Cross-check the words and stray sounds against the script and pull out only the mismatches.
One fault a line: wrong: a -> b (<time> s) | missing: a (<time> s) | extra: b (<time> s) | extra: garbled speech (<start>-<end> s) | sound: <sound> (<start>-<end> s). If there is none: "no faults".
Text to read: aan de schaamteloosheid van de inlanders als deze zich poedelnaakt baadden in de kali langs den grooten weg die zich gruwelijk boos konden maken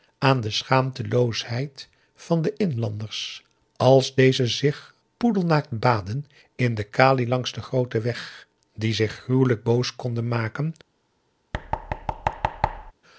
sound: thud (11.5-12.9 s)